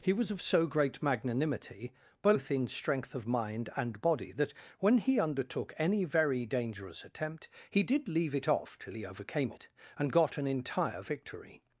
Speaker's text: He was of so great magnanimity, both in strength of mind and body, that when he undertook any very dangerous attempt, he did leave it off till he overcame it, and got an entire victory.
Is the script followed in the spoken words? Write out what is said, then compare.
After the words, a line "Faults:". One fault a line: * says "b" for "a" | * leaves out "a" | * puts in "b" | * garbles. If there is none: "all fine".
He was of so great magnanimity, both in strength of mind and body, that when he undertook any very dangerous attempt, he did leave it off till he overcame it, and got an entire victory.
Faults:
all fine